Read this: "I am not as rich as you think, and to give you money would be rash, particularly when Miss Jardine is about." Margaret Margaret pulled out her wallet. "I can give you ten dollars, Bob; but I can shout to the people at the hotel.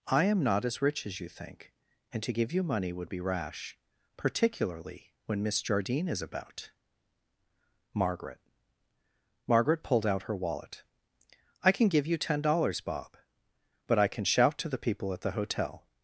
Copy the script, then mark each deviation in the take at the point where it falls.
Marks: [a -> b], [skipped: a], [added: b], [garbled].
"I am not as rich as you think, and to give you money would be rash, particularly when Miss Jardine is about." Margaret Margaret pulled out her wallet. "I can give you ten dollars, Bob; but I can shout to the people at the hotel.